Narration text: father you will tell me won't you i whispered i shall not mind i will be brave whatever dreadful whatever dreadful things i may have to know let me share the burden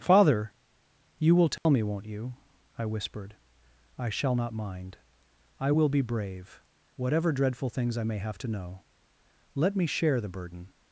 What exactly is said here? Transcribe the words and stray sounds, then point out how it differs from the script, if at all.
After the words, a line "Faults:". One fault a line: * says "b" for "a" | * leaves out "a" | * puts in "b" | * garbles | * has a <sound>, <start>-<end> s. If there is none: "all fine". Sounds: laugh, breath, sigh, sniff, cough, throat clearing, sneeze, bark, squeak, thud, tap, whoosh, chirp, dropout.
father you will tell me won't you i whispered i shall not mind i will be brave whatever dreadful things i may have to know let me share the burden
Faults:
* has a dropout, 1.6-1.7 s
* leaves out "whatever dreadful"